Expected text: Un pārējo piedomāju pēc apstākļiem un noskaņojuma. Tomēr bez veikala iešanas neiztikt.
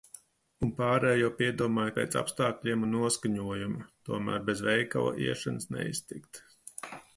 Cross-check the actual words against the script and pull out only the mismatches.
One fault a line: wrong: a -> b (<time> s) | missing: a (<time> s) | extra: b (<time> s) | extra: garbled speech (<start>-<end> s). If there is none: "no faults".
no faults